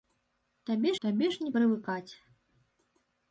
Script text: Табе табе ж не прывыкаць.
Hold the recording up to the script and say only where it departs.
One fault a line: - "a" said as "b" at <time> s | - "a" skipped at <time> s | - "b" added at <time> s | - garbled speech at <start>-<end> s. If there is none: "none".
none